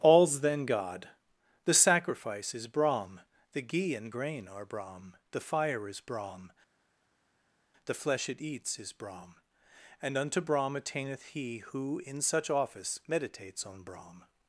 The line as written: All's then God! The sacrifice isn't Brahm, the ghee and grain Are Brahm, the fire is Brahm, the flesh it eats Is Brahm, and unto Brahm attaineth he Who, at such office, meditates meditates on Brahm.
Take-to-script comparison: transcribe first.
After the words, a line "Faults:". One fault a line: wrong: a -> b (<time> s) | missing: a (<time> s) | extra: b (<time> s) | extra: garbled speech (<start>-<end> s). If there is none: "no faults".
All's then God! The sacrifice is Brahm, the ghee and grain Are Brahm, the fire is Brahm, the flesh it eats Is Brahm, and unto Brahm attaineth he Who, in such office, meditates on Brahm.
Faults:
wrong: isn't -> is (2.5 s)
wrong: at -> in (12.1 s)
missing: meditates (13.7 s)